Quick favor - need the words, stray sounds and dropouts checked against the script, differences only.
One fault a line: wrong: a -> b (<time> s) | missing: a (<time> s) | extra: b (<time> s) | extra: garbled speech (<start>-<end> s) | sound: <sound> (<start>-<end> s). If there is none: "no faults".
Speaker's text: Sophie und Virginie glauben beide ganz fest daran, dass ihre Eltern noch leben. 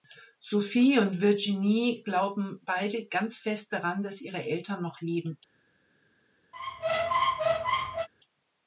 sound: squeak (6.5-8.1 s)